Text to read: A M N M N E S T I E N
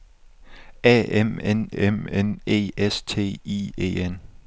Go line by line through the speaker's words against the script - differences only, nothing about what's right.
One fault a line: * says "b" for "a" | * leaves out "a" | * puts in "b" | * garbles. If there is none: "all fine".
all fine